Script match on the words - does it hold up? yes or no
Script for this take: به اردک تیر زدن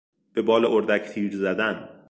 no